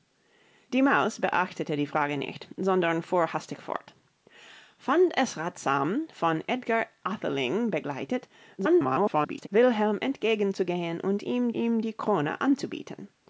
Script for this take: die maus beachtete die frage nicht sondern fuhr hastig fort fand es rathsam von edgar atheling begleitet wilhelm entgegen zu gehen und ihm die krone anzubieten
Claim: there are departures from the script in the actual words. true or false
true